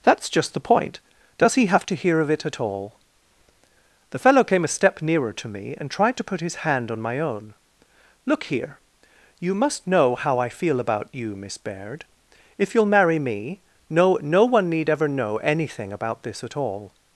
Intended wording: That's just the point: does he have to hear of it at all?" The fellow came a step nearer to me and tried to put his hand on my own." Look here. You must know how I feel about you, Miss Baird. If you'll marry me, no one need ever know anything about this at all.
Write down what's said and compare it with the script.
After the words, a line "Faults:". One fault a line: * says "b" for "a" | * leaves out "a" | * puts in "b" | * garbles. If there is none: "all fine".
That's just the point: does he have to hear of it at all?" The fellow came a step nearer to me and tried to put his hand on my own." Look here. You must know how I feel about you, Miss Baird. If you'll marry me, no no one need ever know anything about this at all.
Faults:
* puts in "no"